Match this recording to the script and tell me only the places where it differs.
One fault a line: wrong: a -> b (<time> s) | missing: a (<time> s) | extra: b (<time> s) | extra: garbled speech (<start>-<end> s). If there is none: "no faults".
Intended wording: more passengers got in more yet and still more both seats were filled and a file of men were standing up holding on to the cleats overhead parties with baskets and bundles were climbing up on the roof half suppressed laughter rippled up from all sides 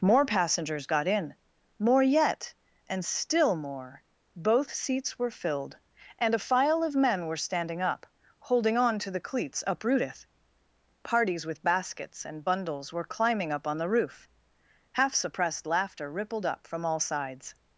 wrong: overhead -> uprooteth (9.7 s)